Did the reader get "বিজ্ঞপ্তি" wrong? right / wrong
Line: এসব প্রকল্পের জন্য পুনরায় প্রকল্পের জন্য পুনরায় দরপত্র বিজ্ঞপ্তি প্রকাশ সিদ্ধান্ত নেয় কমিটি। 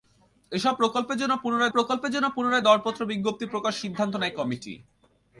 right